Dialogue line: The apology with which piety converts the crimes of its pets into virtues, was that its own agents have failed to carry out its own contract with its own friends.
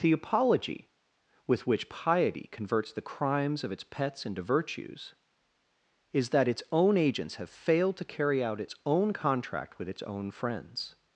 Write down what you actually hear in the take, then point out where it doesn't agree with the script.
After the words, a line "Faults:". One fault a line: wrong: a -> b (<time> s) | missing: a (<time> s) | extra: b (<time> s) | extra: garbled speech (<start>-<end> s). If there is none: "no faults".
The apology with which piety converts the crimes of its pets into virtues, is that its own agents have failed to carry out its own contract with its own friends.
Faults:
wrong: was -> is (6.1 s)